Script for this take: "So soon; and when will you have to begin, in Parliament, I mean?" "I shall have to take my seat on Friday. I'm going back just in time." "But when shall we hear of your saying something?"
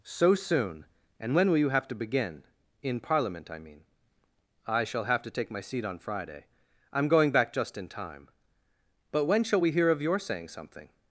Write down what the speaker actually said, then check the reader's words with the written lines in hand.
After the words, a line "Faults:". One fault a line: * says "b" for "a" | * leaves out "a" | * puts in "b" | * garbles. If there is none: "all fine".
"So soon; and when will you have to begin, in Parliament, I mean?" "I shall have to take my seat on Friday. I'm going back just in time." "But when shall we hear of your saying something?"
Faults:
all fine